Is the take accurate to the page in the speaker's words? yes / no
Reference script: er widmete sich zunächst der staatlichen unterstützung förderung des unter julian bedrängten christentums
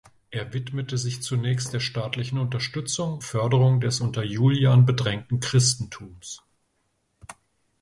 yes